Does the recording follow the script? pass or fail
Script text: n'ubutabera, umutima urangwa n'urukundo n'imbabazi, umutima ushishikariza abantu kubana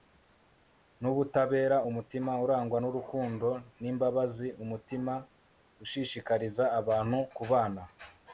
pass